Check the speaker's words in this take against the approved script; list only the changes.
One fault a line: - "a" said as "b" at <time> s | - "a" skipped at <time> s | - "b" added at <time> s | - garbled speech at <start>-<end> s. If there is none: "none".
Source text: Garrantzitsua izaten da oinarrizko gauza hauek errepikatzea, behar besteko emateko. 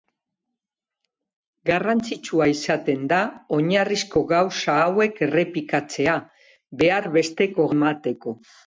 none